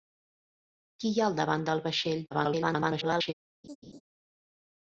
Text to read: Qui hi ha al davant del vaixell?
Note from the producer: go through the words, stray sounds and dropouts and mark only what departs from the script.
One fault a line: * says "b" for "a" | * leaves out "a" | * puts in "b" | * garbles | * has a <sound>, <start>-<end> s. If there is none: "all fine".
* garbles
* has a laugh, 3.6-4.0 s